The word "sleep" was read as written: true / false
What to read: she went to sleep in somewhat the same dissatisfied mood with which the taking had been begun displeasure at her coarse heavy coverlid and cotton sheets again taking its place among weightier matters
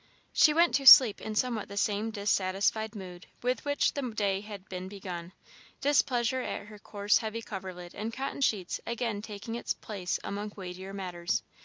true